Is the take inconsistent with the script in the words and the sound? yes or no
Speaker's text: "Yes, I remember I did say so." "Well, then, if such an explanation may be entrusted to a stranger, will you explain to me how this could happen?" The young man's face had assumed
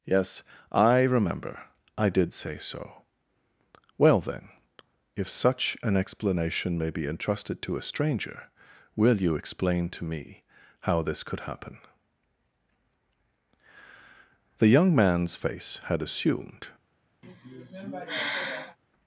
yes